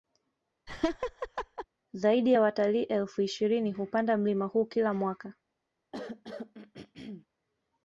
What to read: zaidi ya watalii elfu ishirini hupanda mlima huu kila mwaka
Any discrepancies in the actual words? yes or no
no